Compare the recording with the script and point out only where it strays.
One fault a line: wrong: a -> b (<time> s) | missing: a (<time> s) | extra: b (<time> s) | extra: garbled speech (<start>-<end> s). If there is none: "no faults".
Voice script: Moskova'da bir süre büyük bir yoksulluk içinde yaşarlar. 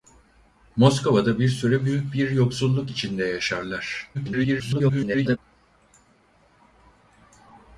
extra: garbled speech (4.1-5.4 s)